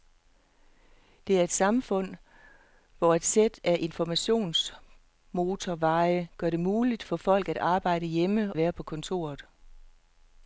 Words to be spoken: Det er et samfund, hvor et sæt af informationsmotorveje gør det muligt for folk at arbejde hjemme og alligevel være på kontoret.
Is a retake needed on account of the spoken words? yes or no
yes